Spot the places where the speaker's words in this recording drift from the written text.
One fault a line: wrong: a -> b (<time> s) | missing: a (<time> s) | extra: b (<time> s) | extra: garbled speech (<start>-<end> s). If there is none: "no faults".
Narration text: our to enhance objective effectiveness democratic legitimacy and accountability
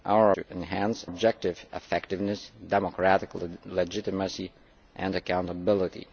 no faults